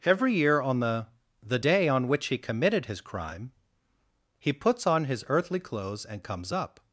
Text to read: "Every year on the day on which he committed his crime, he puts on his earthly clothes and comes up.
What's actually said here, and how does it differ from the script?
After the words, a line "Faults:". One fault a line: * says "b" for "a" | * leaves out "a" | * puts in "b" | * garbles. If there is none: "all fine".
"Every year on the the day on which he committed his crime, he puts on his earthly clothes and comes up.
Faults:
* puts in "the"